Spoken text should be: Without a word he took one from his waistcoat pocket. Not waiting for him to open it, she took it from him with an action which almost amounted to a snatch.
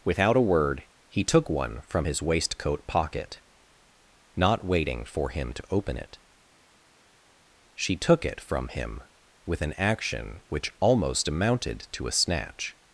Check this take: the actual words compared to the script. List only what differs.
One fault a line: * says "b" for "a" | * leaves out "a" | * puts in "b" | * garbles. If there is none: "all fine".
all fine